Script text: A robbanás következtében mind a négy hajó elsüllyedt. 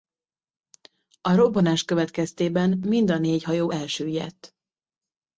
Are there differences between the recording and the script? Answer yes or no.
no